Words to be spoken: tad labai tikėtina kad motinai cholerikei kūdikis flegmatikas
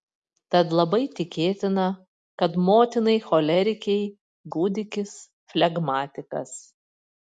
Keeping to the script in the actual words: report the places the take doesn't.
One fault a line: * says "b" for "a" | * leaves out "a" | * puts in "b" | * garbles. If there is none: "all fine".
all fine